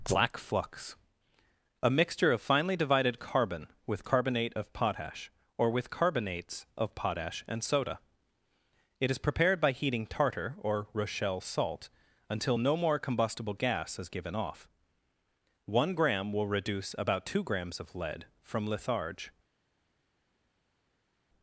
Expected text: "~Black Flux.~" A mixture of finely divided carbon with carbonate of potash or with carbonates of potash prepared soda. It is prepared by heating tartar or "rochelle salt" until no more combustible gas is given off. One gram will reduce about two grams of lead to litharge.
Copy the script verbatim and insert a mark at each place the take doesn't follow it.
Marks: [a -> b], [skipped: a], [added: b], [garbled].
"~Black Flux.~" A mixture of finely divided carbon with carbonate of potash or with carbonates of potash [prepared -> and] soda. It is prepared by heating tartar or "rochelle salt" until no more combustible gas is given off. One gram will reduce about two grams of lead [to -> from] litharge.